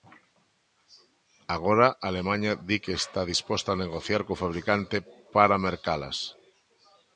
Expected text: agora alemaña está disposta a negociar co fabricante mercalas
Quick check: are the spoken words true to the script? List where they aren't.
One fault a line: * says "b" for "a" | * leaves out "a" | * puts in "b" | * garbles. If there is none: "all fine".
* puts in "di que"
* puts in "para"